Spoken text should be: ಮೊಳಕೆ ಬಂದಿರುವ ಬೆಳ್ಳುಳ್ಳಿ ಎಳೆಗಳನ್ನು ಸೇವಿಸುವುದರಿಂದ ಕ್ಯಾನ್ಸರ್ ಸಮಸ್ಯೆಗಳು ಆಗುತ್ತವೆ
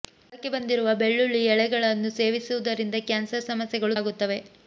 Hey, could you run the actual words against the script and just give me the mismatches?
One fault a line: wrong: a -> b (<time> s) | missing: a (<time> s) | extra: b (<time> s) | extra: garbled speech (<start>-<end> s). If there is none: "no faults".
no faults